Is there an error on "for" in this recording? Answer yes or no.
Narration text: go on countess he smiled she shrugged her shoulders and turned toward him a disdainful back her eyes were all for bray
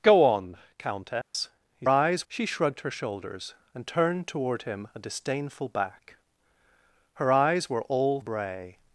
yes